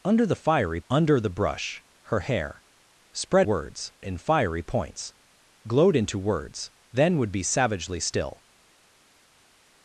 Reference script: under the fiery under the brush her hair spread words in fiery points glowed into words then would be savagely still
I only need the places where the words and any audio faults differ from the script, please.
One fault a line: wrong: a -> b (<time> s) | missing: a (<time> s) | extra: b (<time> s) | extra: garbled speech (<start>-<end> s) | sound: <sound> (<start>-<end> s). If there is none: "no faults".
no faults